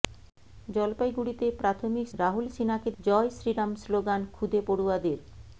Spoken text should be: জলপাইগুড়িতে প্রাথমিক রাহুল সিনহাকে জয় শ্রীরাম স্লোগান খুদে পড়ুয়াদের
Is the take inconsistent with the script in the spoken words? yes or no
no